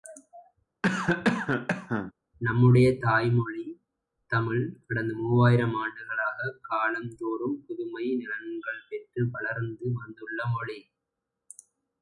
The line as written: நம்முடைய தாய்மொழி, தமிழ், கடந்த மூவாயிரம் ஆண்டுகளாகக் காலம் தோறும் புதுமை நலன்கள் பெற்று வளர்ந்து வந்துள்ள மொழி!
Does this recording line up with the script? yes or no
yes